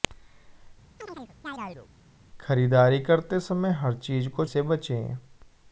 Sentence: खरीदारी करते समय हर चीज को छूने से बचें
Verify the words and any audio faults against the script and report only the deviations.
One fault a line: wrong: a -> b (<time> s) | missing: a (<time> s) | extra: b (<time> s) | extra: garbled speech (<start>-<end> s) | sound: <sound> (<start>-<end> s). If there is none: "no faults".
sound: chirp (1.0-1.9 s)
missing: छूने (4.5 s)